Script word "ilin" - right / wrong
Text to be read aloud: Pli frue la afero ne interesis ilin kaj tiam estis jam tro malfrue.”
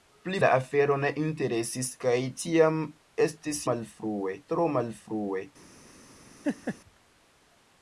wrong